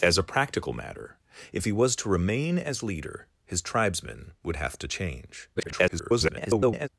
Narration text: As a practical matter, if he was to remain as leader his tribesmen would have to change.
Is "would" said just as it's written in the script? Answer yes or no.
yes